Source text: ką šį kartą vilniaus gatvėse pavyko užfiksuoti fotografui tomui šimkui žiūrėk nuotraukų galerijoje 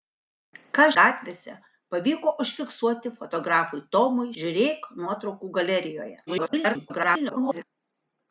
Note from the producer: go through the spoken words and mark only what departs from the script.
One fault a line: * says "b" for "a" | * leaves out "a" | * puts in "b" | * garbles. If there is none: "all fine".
* leaves out "šį kartą vilniaus"
* leaves out "šimkui"
* garbles